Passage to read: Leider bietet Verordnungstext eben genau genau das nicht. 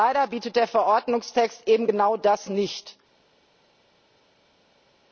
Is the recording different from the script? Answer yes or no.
yes